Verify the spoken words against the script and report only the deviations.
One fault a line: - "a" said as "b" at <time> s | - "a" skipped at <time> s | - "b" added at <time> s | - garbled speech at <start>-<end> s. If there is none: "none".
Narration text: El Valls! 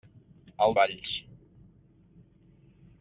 none